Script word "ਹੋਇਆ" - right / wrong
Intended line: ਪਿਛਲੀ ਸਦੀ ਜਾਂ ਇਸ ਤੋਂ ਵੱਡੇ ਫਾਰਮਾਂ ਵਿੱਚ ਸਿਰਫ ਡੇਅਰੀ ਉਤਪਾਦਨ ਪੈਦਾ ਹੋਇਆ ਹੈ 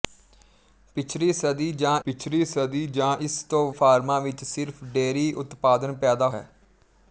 wrong